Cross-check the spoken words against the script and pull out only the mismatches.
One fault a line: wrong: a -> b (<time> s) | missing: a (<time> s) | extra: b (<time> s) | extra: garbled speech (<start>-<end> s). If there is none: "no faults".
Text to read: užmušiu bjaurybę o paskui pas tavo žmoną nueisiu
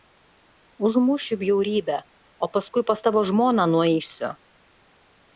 no faults